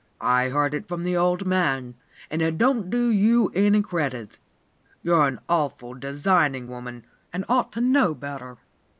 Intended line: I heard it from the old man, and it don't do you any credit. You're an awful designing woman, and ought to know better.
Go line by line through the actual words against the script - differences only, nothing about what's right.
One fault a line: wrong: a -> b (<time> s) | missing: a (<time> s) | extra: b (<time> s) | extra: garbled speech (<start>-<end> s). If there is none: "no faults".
no faults